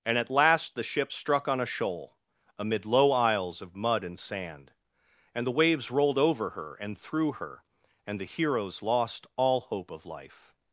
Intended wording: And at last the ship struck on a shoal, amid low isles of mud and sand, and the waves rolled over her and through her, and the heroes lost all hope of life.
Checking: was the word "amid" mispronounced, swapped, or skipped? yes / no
no